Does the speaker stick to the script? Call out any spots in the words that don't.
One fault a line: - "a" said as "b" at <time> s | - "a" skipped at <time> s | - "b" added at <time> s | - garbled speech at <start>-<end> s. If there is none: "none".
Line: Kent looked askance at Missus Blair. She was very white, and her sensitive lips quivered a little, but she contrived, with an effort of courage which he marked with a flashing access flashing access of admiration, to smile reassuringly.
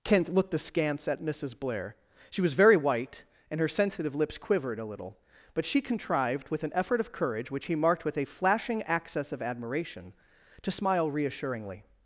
- "flashing access" skipped at 9.3 s